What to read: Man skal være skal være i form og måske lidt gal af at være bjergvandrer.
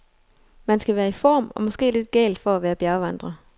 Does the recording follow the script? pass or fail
fail